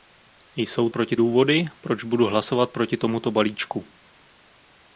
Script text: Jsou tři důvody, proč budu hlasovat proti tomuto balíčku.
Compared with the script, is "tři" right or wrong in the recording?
wrong